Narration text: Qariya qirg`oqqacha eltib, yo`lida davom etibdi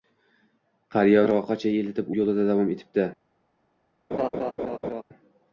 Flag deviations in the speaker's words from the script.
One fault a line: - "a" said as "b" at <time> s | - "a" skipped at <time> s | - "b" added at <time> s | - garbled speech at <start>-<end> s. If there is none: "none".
none